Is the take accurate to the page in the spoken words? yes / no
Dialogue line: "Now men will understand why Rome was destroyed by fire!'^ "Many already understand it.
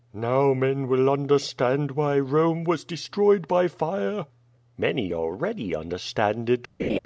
yes